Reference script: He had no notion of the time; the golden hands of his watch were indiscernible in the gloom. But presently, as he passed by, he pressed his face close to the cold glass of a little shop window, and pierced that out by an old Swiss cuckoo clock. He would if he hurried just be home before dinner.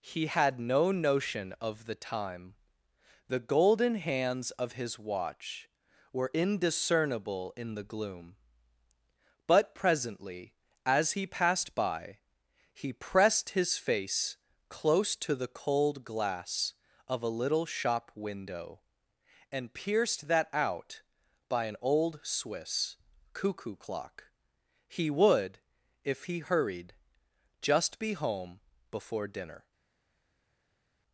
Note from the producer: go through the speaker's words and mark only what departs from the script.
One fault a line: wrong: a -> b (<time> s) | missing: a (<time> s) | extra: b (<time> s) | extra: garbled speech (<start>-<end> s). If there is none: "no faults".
no faults